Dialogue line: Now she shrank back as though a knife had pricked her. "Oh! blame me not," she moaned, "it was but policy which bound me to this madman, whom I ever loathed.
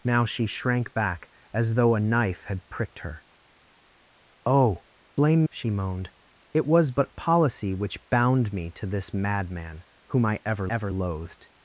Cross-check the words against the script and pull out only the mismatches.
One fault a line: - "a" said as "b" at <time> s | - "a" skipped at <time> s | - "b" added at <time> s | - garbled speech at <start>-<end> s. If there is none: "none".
- "me not" skipped at 5.5 s
- "ever" added at 10.7 s